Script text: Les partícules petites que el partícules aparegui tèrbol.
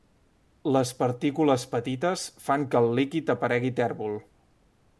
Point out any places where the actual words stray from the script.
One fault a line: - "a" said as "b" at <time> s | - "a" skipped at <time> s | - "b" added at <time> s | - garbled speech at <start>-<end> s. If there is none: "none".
- "fan" added at 2.5 s
- "partícules" said as "líquid" at 3.0 s